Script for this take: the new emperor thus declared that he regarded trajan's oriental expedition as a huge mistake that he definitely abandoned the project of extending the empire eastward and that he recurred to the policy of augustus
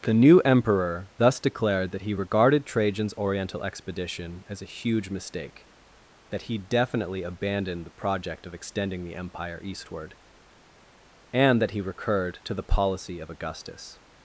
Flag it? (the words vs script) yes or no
no